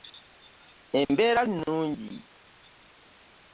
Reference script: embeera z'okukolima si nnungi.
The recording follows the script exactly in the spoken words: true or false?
false